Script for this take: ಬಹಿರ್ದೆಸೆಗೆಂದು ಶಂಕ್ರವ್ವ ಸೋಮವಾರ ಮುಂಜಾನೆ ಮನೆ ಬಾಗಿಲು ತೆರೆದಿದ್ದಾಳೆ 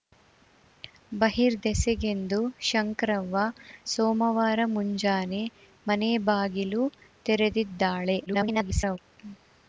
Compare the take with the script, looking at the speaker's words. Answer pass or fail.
fail